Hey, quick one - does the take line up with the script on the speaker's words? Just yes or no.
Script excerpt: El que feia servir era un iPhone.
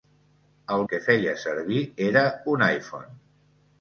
yes